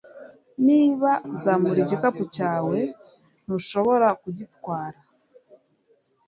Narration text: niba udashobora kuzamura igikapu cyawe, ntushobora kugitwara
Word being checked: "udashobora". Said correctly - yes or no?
no